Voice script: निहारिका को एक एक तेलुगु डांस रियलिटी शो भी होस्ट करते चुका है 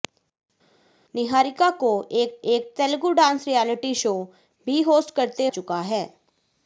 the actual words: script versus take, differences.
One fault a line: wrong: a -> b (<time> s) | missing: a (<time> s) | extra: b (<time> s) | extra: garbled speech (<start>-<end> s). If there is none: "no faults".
no faults